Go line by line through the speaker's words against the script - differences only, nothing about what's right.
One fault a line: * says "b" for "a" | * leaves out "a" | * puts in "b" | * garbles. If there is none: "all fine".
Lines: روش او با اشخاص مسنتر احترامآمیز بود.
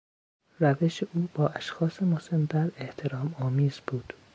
all fine